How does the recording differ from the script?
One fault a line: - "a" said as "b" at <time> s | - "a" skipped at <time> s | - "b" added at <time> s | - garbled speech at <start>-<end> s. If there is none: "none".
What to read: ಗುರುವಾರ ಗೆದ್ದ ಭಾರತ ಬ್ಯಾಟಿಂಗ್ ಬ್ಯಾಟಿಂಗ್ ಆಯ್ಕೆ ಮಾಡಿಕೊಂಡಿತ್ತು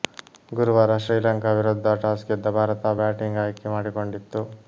- "ಶ್ರೀಲಂಕಾ ವಿರುದ್ಧ ಟಾಸ್" added at 1.0 s
- "ಬ್ಯಾಟಿಂಗ್" skipped at 3.4 s